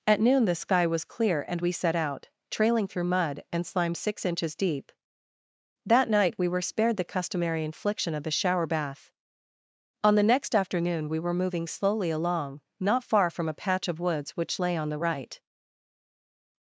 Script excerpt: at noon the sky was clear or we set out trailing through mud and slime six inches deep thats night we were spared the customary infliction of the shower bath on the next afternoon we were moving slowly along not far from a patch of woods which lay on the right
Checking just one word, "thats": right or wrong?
wrong